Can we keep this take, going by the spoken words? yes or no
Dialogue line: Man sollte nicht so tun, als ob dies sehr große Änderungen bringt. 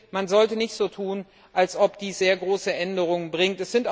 yes